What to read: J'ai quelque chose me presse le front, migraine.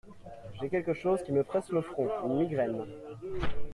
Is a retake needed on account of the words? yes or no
yes